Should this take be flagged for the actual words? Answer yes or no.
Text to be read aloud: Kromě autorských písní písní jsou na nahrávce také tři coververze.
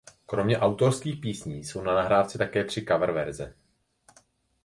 yes